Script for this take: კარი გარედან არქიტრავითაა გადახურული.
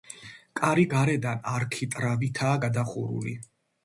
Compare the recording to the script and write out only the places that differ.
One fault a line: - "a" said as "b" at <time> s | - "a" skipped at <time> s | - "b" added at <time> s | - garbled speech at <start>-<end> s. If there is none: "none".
none